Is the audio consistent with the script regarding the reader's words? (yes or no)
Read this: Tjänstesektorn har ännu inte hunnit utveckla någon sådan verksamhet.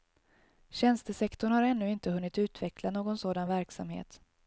yes